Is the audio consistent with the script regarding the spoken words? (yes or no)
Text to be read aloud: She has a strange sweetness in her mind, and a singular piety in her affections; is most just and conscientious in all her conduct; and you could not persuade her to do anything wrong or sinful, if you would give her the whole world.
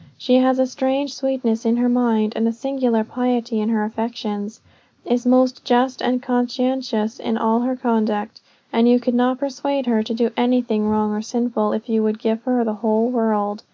yes